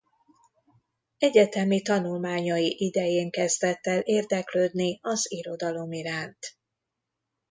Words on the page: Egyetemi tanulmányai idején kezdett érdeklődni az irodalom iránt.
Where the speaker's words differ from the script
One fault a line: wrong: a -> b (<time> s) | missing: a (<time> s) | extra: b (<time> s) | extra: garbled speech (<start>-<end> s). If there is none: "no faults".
extra: el (3.9 s)